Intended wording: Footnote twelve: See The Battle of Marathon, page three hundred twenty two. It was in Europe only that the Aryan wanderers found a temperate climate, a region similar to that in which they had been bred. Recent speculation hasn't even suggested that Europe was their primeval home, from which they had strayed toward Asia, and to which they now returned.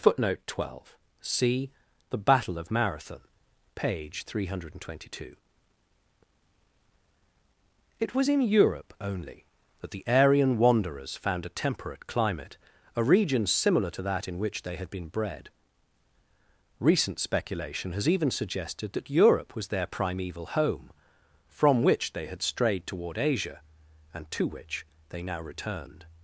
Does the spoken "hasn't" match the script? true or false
false